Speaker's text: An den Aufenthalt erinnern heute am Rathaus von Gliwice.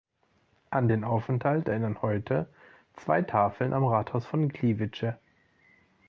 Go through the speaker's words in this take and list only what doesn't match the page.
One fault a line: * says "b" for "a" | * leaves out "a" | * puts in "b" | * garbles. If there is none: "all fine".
* puts in "zwei Tafeln"